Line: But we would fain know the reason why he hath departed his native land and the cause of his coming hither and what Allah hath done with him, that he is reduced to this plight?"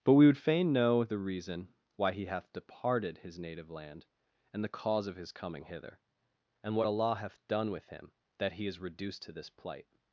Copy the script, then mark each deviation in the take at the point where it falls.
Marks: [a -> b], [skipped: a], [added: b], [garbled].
But we would fain know the reason why he hath departed his native land and the cause of his coming hither and what Allah hath done with him, that he is reduced to this plight?"